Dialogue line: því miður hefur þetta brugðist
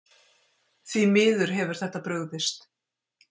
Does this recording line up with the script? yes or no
yes